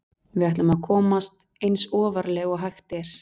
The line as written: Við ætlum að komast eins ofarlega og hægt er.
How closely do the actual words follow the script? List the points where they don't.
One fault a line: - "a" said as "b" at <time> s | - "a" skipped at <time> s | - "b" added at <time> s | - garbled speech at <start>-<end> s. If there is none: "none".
none